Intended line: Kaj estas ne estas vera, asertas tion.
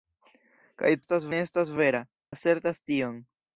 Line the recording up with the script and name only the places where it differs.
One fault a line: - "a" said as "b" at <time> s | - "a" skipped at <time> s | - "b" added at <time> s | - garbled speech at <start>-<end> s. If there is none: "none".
none